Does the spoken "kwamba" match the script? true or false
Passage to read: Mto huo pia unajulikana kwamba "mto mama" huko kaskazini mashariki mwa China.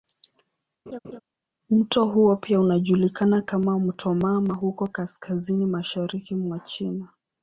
false